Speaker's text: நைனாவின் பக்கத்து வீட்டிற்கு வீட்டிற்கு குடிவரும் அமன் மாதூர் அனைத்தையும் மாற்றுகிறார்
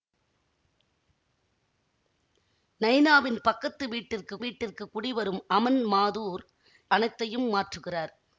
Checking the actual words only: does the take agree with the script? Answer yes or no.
yes